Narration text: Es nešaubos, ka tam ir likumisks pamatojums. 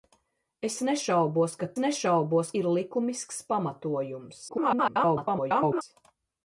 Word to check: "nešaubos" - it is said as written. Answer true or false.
true